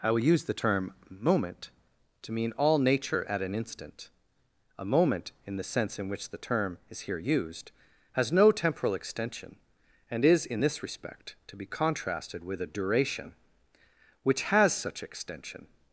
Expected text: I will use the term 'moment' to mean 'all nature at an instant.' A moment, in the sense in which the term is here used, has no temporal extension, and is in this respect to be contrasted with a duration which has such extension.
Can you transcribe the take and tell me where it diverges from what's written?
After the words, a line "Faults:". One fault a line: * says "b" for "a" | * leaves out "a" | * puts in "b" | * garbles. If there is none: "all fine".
I will use the term 'moment' to mean 'all nature at an instant.' A moment, in the sense in which the term is here used, has no temporal extension, and is in this respect to be contrasted with a duration which has such extension.
Faults:
all fine